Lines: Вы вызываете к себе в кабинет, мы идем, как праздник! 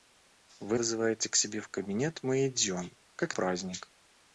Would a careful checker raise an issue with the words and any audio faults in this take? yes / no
no